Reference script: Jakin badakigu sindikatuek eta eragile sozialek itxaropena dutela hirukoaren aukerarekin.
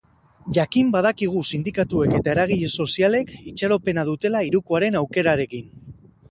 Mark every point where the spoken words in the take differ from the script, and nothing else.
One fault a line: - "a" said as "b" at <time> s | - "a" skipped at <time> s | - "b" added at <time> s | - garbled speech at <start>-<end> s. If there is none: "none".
none